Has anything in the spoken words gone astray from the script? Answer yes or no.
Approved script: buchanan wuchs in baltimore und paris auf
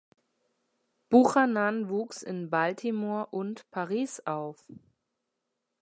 no